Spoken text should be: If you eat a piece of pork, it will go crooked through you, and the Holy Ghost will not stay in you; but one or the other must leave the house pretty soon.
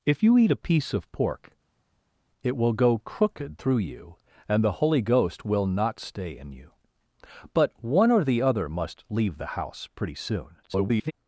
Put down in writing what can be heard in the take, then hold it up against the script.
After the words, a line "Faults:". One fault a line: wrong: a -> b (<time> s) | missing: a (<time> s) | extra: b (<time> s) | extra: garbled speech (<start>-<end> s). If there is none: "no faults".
If you eat a piece of pork, it will go crooked through you, and the Holy Ghost will not stay in you; but one or the other must leave the house pretty soon. [garbled]
Faults:
extra: garbled speech (10.6-11.1 s)